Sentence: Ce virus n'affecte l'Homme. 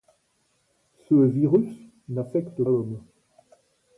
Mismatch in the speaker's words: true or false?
false